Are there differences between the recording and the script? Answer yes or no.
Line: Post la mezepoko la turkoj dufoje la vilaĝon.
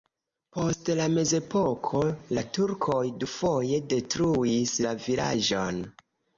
yes